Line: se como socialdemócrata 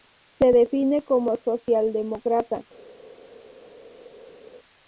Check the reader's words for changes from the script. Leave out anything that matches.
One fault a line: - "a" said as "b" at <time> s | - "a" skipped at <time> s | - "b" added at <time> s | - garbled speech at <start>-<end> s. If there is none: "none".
- "define" added at 0.5 s